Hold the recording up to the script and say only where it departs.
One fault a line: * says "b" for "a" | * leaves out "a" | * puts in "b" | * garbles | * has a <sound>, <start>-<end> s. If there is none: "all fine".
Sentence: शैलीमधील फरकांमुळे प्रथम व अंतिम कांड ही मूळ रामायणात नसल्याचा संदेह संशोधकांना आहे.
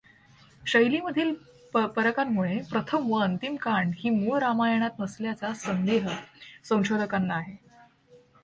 all fine